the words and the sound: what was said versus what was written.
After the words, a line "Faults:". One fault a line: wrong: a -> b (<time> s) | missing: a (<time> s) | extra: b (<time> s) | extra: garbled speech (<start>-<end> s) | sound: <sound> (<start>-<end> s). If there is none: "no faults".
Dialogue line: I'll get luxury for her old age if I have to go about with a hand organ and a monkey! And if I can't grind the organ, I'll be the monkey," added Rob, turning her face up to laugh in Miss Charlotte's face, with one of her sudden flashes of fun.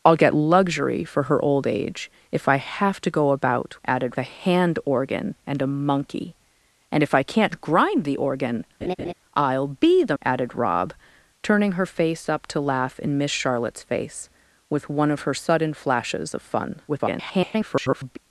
I'll get luxury for her old age if I have to go about added a hand organ and a monkey! And if I can't grind the organ, I'll be the," added Rob, turning her face up to laugh in Miss Charlotte's face, with one of her sudden flashes of fun. [garbled]
Faults:
wrong: with -> added (3.9 s)
sound: laugh (8.8-9.1 s)
missing: monkey (10.2 s)
extra: garbled speech (16.9-18.2 s)